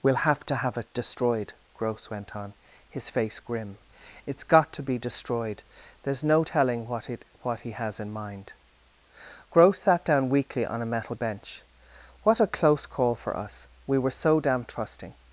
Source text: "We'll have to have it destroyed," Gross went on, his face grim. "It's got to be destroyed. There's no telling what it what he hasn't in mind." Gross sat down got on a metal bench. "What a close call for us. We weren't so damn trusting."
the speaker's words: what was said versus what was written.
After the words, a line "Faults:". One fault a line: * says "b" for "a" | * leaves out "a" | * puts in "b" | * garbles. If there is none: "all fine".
"We'll have to have it destroyed," Gross went on, his face grim. "It's got to be destroyed. There's no telling what it what he has in mind." Gross sat down weakly on a metal bench. "What a close call for us. We were so damn trusting."
Faults:
* says "has" for "hasn't"
* says "weakly" for "got"
* says "were" for "weren't"